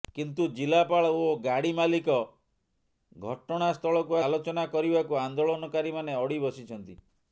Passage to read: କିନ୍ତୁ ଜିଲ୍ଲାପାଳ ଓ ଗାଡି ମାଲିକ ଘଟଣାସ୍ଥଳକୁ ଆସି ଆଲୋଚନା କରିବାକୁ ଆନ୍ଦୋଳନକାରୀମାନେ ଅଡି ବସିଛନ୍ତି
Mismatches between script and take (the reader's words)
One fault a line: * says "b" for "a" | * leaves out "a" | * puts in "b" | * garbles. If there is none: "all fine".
* leaves out "ଆସି"